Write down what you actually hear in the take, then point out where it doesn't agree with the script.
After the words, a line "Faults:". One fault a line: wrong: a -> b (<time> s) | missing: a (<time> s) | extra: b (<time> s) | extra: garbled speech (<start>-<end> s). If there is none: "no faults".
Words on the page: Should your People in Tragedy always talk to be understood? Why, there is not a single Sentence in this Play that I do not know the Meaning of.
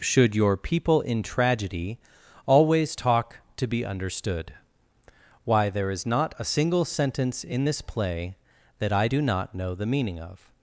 Should your People in Tragedy always talk to be understood? Why, there is not a single Sentence in this Play that I do not know the Meaning of.
Faults:
no faults